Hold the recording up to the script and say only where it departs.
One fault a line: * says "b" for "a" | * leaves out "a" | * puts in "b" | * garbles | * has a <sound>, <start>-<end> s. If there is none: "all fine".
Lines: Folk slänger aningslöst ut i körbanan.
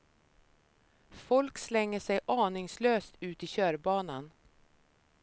* puts in "sig"